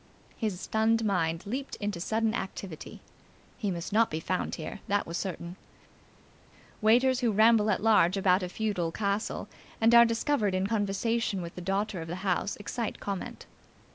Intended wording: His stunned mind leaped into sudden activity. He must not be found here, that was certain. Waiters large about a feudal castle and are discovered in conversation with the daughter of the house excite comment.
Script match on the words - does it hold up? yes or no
no